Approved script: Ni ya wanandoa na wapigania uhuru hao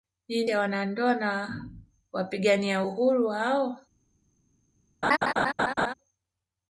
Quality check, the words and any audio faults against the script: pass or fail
fail